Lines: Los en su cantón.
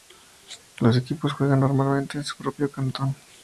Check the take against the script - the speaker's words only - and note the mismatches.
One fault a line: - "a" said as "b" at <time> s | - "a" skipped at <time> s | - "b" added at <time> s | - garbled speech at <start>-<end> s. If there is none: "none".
- "equipos juegan normalmente" added at 1.0 s
- "propio" added at 2.4 s